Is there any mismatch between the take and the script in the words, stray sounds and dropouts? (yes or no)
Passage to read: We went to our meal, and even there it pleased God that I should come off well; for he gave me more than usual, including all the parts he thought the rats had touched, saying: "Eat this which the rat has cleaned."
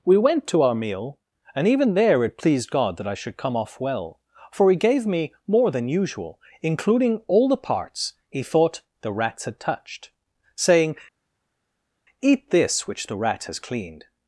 no